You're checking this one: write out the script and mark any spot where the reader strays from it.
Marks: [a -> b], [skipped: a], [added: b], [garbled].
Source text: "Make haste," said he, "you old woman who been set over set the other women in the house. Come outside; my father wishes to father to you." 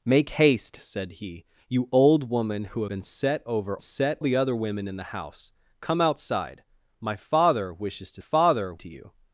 "Make haste," said he, "you old woman who been set over set the other women in the house. Come outside; my father wishes to father to you."